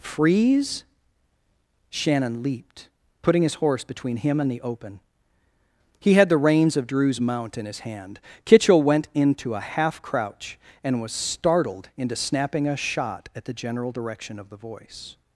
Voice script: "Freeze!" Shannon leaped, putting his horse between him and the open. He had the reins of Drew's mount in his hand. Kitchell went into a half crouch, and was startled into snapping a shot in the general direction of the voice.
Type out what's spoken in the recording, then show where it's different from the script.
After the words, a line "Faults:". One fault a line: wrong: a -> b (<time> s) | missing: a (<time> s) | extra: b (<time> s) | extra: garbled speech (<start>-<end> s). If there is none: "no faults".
"Freeze!" Shannon leaped, putting his horse between him and the open. He had the reins of Drew's mount in his hand. Kitchell went into a half crouch, and was startled into snapping a shot at the general direction of the voice.
Faults:
wrong: in -> at (13.3 s)